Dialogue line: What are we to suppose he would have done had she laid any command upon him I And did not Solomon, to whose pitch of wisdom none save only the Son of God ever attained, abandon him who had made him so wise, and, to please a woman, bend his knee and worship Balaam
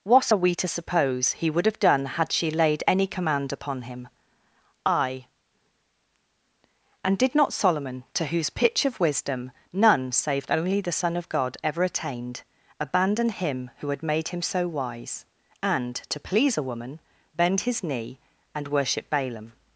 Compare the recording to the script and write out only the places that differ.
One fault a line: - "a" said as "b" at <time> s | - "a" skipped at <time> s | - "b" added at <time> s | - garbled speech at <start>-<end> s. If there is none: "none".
none